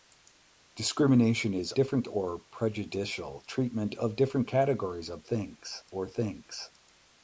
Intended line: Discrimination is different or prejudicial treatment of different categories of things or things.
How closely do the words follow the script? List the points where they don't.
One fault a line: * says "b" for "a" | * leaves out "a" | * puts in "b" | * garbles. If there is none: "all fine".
all fine